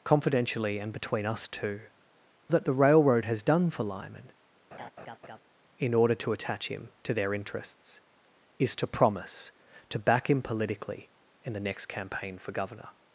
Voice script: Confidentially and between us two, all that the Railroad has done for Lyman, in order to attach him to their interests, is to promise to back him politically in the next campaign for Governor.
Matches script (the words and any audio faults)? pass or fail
fail